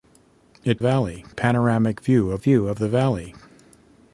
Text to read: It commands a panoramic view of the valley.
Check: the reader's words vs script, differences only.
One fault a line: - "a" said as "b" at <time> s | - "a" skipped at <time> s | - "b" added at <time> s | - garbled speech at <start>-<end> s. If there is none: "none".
- "commands" said as "valley" at 0.8 s
- "view of" added at 2.4 s